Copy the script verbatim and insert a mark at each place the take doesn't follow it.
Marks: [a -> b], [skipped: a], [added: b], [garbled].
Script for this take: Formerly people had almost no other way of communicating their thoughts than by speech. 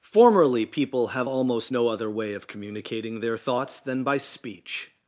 Formerly people [had -> have] almost no other way of communicating their thoughts than by speech.